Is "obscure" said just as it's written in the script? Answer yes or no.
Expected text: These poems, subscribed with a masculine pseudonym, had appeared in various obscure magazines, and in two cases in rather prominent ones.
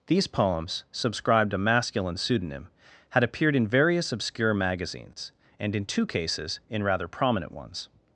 yes